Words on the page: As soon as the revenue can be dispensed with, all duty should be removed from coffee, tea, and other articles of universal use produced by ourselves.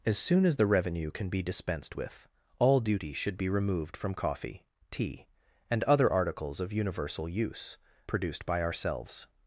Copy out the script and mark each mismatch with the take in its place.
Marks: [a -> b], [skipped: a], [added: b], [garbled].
As soon as the revenue can be dispensed with, all duty should be removed from coffee, tea, and other articles of universal use produced by ourselves.